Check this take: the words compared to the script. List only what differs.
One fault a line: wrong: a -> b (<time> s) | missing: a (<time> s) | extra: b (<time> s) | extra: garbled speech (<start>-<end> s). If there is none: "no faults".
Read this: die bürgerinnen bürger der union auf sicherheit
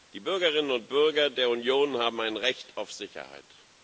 extra: und (0.7 s)
extra: haben ein recht (2.0 s)